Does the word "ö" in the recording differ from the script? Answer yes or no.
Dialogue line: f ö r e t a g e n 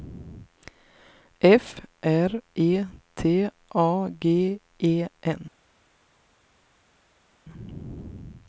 yes